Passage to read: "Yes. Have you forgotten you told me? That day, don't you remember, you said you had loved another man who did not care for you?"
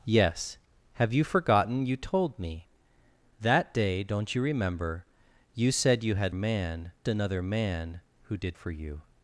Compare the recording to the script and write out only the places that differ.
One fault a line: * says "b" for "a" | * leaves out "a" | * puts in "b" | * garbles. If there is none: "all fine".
* says "man" for "loved"
* leaves out "not care"